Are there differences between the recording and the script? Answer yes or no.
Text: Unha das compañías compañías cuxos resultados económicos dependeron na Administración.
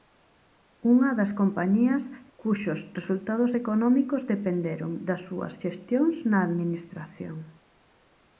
yes